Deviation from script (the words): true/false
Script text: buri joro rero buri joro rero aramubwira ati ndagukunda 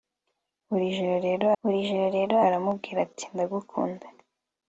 false